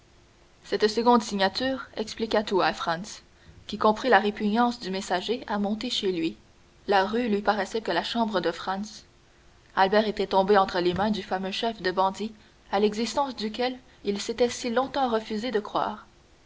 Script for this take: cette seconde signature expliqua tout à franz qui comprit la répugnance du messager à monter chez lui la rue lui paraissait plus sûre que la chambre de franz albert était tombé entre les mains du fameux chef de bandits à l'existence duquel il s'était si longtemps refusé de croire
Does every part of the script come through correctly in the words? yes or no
no